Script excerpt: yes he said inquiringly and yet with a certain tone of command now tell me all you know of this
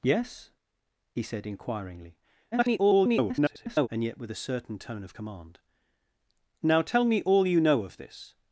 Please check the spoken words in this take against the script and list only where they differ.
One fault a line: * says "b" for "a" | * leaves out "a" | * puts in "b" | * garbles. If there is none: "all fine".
* garbles